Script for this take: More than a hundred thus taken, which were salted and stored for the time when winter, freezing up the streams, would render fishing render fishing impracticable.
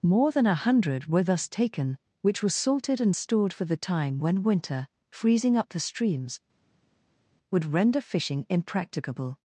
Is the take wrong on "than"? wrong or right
right